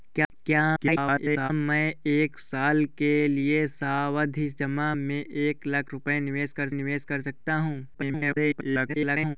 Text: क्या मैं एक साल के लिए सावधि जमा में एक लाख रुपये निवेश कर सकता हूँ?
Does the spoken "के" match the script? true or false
true